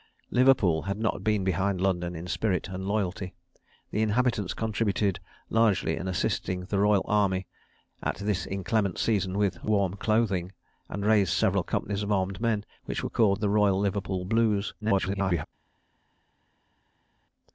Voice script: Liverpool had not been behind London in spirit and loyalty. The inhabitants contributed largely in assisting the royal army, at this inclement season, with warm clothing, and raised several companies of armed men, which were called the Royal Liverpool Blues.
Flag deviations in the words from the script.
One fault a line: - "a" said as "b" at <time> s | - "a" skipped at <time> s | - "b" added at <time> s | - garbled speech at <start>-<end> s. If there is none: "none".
- garbled speech at 14.8-15.5 s